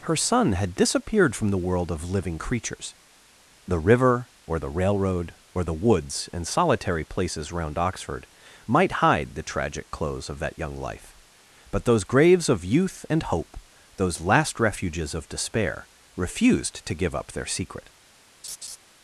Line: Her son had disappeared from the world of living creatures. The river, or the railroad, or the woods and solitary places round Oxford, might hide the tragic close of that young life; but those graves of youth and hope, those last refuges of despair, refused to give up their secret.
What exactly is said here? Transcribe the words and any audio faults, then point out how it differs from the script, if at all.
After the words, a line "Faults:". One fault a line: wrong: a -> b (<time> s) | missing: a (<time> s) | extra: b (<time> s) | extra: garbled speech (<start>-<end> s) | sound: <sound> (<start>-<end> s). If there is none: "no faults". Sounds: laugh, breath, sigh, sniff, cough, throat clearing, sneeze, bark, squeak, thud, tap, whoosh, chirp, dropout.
Her son had disappeared from the world of living creatures. The river, or the railroad, or the woods and solitary places round Oxford, might hide the tragic close of that young life; but those graves of youth and hope, those last refuges of despair, refused to give up their secret.
Faults:
sound: laugh (18.4-18.8 s)